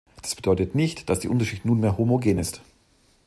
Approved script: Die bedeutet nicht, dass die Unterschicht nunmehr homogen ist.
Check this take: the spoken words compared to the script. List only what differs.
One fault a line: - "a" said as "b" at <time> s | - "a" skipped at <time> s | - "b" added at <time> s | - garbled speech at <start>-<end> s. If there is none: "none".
- "Die" said as "Das" at 0.2 s